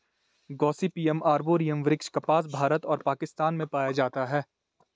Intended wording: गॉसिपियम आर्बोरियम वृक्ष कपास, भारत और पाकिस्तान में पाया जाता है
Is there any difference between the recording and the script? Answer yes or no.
no